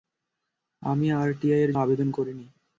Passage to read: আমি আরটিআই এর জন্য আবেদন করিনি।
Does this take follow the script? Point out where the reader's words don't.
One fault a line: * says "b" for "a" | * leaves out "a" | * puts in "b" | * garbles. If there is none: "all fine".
* leaves out "জন্য"